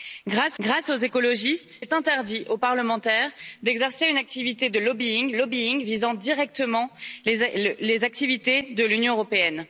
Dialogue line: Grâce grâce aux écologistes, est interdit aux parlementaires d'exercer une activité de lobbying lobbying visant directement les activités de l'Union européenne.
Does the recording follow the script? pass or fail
pass